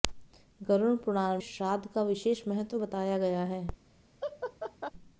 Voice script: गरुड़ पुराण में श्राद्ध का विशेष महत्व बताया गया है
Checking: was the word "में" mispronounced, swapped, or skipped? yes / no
yes